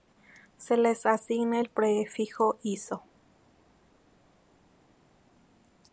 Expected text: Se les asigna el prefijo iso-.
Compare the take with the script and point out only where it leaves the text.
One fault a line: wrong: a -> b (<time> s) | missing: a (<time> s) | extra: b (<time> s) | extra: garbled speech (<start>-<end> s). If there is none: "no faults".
no faults